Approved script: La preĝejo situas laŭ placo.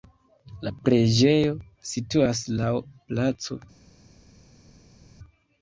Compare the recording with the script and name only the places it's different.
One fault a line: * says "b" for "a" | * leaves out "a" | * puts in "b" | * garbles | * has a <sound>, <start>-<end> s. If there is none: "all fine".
all fine